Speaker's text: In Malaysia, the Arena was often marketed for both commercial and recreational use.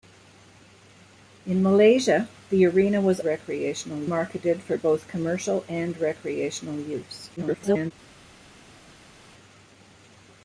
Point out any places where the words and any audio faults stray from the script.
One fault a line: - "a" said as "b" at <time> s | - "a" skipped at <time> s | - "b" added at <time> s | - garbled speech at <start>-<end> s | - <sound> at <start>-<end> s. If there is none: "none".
- "often" said as "recreational" at 3.2 s
- garbled speech at 7.4-7.9 s